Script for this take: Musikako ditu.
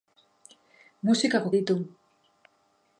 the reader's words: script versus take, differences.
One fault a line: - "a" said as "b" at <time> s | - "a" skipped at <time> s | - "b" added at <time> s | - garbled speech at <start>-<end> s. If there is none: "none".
none